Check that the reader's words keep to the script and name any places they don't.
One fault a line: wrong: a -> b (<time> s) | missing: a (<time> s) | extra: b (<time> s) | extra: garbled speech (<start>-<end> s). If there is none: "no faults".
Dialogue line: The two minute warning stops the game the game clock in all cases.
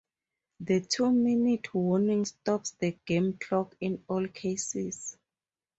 missing: the game (3.3 s)